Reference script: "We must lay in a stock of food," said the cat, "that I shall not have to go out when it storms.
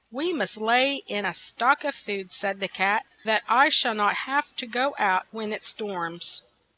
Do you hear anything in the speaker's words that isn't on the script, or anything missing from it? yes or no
no